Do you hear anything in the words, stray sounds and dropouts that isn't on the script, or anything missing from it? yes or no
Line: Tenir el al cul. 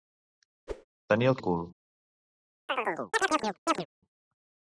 yes